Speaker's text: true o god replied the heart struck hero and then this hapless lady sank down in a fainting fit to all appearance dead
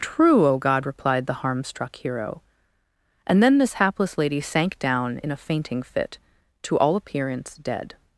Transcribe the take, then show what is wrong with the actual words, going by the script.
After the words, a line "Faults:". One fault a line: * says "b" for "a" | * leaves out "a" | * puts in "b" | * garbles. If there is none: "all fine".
true o god replied the harm struck hero and then this hapless lady sank down in a fainting fit to all appearance dead
Faults:
* says "harm" for "heart"